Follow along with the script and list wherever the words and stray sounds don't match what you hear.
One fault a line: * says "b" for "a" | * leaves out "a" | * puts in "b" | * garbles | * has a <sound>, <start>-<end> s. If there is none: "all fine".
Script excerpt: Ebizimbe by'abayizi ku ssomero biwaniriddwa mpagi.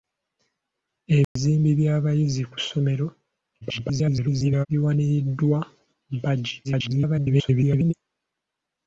* has a dropout, 1.2-1.4 s
* garbles
* garbles